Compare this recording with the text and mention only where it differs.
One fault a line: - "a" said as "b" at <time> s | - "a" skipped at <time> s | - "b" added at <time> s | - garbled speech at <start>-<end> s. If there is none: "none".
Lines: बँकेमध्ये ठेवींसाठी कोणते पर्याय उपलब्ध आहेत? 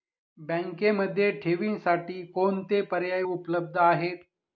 none